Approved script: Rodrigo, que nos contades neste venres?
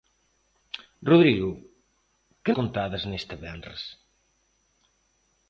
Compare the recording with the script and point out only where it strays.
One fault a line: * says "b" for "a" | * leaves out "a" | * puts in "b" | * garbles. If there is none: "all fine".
* leaves out "nos"